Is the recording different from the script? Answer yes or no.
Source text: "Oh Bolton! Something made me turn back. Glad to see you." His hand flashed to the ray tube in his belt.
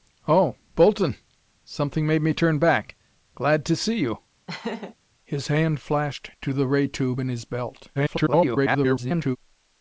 yes